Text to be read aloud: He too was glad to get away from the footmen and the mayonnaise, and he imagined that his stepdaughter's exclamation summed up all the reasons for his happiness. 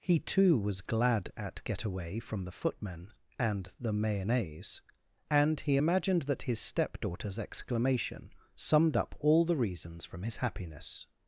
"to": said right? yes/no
no